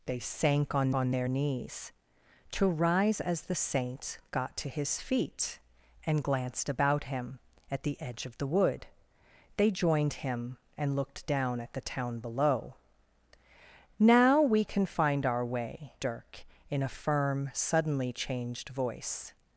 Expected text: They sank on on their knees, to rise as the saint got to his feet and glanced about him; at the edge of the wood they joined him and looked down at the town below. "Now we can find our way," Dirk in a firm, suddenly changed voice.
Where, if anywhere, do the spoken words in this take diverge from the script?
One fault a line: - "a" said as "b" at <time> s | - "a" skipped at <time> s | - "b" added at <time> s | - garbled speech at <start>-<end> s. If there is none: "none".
none